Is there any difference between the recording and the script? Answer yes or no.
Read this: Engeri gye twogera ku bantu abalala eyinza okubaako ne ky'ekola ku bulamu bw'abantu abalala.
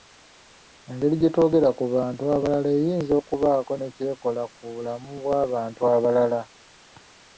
no